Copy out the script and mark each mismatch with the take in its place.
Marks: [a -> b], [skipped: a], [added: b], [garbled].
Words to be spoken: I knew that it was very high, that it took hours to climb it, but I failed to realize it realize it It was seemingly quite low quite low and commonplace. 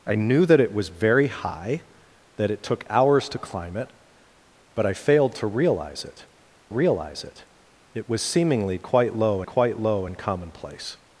I knew that it was very high, that it took hours to climb it, but I failed to realize it realize it It was seemingly quite low quite low and commonplace.